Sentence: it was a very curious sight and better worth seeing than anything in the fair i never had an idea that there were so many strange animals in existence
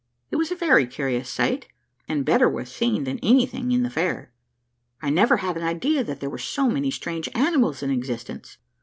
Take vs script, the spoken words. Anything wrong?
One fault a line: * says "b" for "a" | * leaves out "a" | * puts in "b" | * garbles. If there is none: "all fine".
all fine